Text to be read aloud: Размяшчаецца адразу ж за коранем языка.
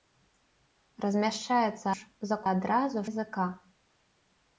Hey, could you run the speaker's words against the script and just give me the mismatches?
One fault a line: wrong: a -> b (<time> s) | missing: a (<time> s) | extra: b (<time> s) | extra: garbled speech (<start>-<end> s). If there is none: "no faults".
missing: адразу (1.9 s)
wrong: коранем -> адразу (2.5 s)